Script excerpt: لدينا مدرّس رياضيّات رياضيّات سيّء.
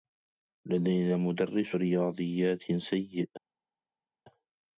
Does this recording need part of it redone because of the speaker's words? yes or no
yes